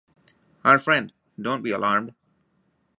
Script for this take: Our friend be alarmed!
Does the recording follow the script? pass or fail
fail